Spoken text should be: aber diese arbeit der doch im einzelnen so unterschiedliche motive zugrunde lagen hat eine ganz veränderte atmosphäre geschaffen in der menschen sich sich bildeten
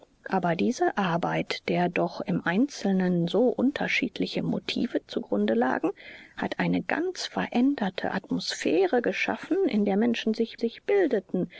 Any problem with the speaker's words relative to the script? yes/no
no